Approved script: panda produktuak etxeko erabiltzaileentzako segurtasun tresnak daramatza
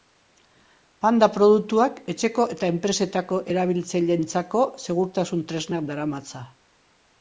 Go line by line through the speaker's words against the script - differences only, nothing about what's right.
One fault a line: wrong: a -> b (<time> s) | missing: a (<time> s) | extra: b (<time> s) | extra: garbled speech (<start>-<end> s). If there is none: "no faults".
extra: eta enpresetako (2.6 s)